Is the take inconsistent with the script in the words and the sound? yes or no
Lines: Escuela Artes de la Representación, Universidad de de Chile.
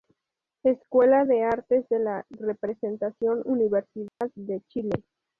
yes